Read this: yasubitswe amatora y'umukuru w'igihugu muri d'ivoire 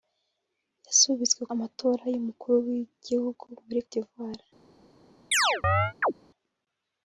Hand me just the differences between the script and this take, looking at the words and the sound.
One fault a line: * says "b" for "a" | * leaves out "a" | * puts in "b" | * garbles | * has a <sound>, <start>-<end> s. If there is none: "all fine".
* has a chirp, 5.3-6.1 s